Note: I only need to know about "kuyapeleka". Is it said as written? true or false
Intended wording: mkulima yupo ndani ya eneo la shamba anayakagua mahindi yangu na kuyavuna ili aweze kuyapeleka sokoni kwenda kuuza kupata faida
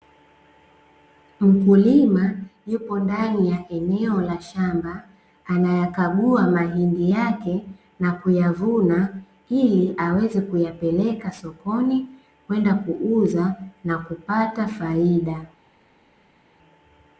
true